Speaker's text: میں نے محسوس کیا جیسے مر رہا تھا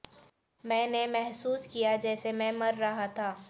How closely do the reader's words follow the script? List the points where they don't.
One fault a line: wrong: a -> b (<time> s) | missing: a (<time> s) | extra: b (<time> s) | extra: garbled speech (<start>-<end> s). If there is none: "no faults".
extra: میں (2.3 s)